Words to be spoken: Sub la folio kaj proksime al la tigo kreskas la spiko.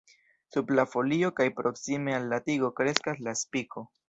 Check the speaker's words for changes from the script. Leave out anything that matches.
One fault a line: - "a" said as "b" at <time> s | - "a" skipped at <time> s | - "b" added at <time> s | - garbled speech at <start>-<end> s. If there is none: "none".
none